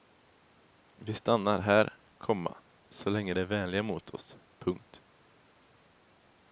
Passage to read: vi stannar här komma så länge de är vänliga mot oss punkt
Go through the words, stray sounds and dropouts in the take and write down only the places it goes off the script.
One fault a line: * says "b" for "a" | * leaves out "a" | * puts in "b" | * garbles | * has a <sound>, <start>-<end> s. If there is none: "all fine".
all fine